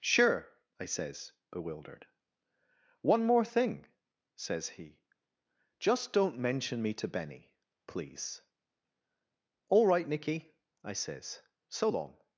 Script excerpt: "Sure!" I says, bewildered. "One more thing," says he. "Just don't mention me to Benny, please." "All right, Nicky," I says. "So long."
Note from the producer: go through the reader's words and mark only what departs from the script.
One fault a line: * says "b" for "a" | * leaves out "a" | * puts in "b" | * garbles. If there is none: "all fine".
all fine